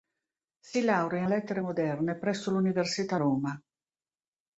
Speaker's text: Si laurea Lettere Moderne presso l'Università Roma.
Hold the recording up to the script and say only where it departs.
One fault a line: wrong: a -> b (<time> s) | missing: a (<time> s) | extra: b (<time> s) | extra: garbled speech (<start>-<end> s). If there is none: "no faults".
no faults